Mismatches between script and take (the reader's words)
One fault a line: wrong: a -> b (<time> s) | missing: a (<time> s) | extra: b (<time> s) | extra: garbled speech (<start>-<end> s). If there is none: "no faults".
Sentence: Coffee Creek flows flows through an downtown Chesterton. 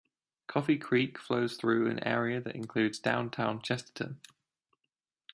missing: flows (1.6 s)
extra: area that includes (2.0 s)